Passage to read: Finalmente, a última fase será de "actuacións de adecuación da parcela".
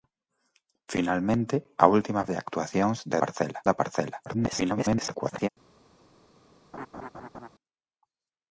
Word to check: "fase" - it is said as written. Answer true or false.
false